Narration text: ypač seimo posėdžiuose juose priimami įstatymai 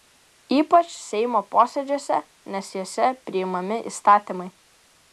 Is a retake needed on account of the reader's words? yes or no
yes